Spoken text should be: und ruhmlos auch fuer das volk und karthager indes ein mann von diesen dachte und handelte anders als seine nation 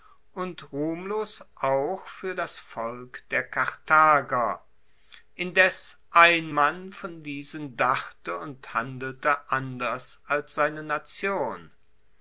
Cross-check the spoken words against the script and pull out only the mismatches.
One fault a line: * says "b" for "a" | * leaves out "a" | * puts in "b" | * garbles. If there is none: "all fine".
* says "der" for "und"